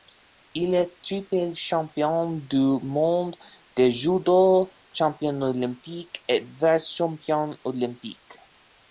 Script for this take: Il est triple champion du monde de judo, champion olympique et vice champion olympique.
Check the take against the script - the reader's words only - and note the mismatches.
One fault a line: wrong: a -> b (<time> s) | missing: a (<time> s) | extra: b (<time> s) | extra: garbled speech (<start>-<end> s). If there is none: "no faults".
no faults